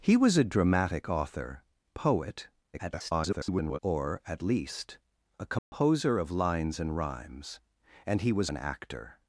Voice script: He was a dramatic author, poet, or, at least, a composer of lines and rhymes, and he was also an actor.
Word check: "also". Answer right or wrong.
wrong